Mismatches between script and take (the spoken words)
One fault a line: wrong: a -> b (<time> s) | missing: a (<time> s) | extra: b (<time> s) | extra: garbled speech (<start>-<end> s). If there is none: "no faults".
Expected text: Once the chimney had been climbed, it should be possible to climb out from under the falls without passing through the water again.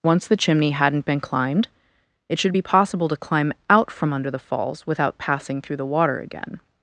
wrong: had -> hadn't (0.7 s)